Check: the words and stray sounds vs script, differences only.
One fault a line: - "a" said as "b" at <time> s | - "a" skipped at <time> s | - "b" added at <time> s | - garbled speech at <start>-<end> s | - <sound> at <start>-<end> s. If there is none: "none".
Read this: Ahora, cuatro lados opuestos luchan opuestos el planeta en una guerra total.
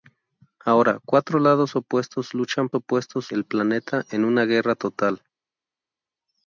none